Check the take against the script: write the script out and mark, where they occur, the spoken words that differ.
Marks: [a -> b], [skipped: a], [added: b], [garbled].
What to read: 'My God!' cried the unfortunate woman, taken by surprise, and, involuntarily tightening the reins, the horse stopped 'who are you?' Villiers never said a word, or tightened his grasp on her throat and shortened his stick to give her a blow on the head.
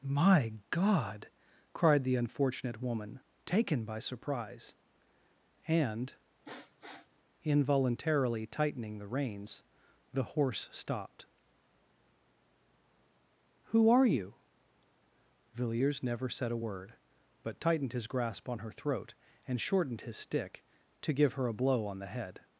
'My God!' cried the unfortunate woman, taken by surprise, and, involuntarily tightening the reins, the horse stopped 'who are you?' Villiers never said a word, [or -> but] tightened his grasp on her throat and shortened his stick to give her a blow on the head.